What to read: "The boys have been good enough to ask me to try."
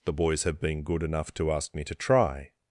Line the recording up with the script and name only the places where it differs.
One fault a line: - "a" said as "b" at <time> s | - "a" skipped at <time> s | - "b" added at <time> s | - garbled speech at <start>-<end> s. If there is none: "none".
none